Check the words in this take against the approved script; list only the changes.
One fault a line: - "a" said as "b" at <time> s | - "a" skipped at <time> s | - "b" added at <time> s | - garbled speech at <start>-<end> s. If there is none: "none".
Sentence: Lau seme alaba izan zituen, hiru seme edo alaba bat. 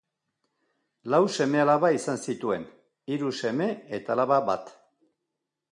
- "edo" said as "eta" at 4.0 s